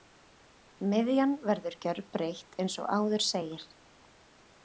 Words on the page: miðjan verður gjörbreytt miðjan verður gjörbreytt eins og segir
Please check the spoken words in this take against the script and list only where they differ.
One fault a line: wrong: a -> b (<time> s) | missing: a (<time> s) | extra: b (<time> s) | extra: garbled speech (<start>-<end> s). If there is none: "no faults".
missing: miðjan verður gjörbreytt (2.6 s)
extra: áður (3.0 s)